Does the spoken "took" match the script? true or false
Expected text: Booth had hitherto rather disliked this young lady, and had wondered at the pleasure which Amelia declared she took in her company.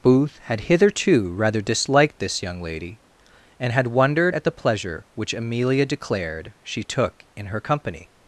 true